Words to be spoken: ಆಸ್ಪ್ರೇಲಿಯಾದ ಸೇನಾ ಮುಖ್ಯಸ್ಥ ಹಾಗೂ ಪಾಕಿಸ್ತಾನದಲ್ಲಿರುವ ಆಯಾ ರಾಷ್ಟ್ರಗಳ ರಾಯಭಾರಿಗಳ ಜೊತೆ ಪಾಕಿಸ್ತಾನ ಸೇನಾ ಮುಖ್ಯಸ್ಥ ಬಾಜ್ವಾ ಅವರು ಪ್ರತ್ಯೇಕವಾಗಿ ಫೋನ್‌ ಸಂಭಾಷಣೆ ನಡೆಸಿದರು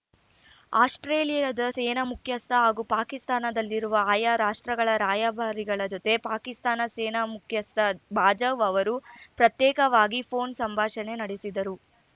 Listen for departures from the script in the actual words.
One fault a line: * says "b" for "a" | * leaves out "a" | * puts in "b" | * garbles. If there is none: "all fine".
all fine